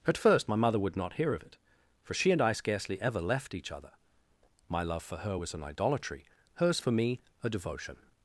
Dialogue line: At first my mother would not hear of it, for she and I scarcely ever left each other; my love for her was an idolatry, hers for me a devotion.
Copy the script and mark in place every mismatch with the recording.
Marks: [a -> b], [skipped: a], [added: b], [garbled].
At first my mother would not hear of it, for she and I scarcely ever left each other; my love for her was an idolatry, hers for me a devotion.